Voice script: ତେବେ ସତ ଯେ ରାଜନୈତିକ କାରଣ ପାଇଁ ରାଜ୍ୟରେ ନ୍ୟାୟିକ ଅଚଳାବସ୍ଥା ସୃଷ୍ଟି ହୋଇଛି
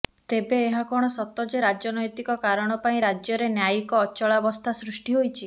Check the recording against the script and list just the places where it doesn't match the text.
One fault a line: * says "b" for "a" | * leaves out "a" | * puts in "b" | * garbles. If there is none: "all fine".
* puts in "ଏହା କଣ"